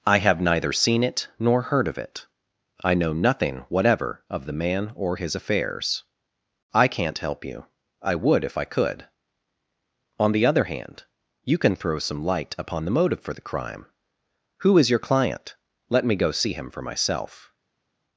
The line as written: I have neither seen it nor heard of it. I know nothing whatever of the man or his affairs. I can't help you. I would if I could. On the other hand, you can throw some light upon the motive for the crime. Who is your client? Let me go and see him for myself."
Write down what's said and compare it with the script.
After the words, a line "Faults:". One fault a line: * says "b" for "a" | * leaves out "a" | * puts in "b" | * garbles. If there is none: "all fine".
I have neither seen it nor heard of it. I know nothing whatever of the man or his affairs. I can't help you. I would if I could. On the other hand, you can throw some light upon the motive for the crime. Who is your client? Let me go see him for myself."
Faults:
* leaves out "and"